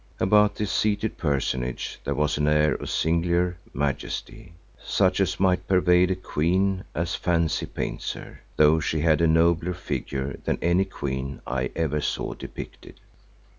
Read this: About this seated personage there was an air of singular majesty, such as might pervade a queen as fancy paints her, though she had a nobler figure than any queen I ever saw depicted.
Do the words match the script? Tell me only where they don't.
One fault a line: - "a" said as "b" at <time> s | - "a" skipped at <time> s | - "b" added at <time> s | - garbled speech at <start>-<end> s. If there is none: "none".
none